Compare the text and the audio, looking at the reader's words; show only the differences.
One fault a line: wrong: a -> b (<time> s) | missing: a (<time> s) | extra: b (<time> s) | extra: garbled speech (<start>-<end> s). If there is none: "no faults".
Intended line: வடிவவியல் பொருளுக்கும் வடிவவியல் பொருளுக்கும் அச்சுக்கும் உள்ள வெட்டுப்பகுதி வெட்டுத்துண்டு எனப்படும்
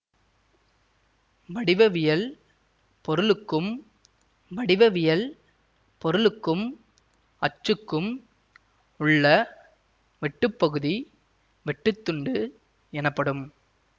no faults